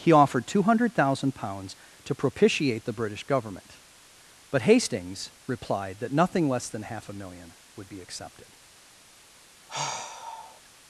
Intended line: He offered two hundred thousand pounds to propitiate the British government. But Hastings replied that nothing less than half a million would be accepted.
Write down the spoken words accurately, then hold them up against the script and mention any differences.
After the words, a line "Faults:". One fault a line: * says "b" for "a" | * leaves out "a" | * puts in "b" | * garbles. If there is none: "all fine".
He offered two hundred thousand pounds to propitiate the British government. But Hastings replied that nothing less than half a million would be accepted.
Faults:
all fine